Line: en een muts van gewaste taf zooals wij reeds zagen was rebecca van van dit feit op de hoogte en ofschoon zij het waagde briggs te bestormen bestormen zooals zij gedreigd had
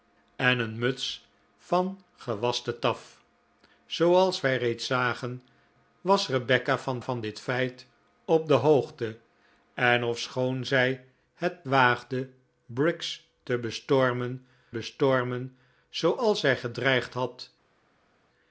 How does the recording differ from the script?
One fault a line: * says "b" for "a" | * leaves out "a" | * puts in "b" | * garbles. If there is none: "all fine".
all fine